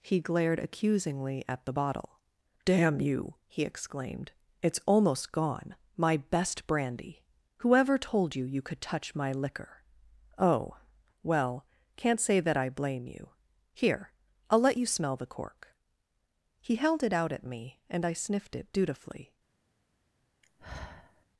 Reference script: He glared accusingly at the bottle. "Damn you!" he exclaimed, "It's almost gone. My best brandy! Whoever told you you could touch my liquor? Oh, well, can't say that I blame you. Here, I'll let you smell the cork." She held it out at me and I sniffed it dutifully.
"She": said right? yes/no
no